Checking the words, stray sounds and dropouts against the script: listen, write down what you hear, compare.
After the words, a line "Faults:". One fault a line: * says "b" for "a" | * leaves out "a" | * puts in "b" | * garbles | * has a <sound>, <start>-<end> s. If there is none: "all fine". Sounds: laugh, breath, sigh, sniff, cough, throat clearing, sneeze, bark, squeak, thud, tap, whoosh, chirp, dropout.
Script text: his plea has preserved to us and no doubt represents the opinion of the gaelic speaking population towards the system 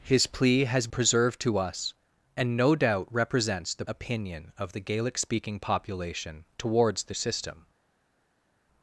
his plea has preserved to us and no doubt represents the opinion of the gaelic speaking population towards the system
Faults:
all fine